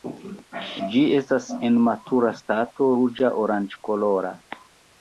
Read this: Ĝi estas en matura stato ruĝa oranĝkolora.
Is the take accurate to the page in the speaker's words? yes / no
yes